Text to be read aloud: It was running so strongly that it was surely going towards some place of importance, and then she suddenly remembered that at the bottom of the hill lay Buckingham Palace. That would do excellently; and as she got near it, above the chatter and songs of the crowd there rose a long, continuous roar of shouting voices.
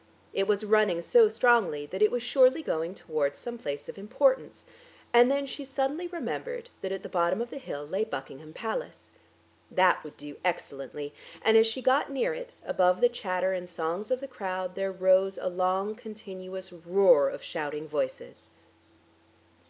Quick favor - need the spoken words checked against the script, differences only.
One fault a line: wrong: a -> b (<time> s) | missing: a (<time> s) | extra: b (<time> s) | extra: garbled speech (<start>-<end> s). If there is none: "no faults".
no faults